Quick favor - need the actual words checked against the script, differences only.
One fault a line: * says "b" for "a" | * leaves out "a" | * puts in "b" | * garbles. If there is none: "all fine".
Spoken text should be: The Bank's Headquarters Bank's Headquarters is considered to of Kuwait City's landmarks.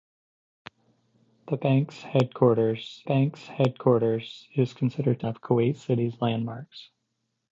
all fine